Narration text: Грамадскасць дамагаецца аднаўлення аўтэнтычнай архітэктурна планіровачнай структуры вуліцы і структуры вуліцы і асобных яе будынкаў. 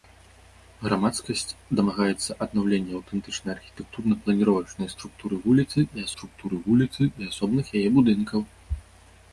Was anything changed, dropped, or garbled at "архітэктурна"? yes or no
no